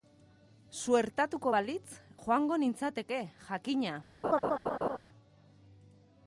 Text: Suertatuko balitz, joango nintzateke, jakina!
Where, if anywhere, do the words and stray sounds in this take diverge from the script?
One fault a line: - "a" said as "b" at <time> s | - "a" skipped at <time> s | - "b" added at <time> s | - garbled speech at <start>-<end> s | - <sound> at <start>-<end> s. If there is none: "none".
- laugh at 4.2-5.0 s